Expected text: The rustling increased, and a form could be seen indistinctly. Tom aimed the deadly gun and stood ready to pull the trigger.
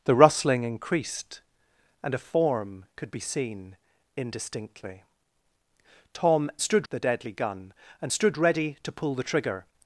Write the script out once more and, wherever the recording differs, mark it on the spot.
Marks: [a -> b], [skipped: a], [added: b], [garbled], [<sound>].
The rustling increased, and a form could be seen indistinctly. Tom [aimed -> stood] the deadly gun and stood ready to pull the trigger.